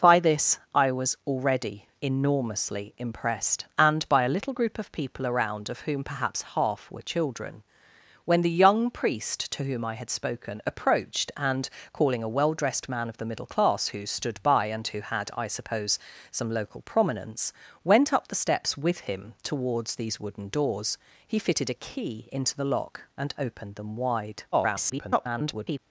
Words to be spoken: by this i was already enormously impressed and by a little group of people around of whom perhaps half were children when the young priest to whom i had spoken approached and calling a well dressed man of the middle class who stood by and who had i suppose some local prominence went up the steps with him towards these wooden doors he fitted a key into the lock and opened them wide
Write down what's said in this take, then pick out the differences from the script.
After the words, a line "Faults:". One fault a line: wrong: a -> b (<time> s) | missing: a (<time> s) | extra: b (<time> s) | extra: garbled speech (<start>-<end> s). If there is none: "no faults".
by this i was already enormously impressed and by a little group of people around of whom perhaps half were children when the young priest to whom i had spoken approached and calling a well dressed man of the middle class who stood by and who had i suppose some local prominence went up the steps with him towards these wooden doors he fitted a key into the lock and opened them wide [garbled]
Faults:
extra: garbled speech (24.5-25.8 s)